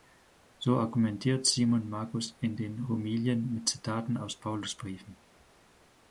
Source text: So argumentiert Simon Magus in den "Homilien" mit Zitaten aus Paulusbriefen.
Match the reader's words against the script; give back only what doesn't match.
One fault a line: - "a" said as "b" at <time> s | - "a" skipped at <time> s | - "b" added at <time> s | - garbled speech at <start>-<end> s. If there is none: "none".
none